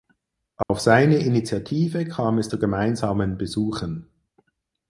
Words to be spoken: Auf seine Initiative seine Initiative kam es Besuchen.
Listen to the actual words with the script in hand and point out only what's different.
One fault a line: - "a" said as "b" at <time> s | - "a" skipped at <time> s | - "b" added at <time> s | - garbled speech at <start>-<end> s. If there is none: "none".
- "seine Initiative kam es" said as "kam es zu gemeinsamen" at 2.1 s